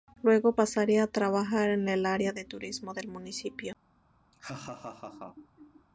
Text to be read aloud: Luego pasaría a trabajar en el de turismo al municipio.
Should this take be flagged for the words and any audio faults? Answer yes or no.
yes